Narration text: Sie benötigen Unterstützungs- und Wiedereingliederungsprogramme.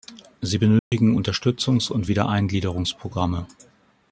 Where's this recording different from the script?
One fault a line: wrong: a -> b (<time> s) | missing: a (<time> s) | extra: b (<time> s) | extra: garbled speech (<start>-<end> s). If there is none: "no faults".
no faults